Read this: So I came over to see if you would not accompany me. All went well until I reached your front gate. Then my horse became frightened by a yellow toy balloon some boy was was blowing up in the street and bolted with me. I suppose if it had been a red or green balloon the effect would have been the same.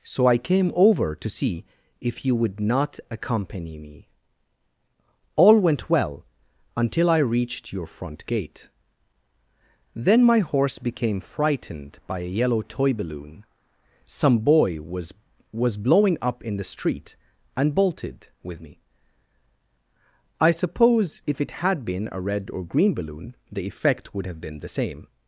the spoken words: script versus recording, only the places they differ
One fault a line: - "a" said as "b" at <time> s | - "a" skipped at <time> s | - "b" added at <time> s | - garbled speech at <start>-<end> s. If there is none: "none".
none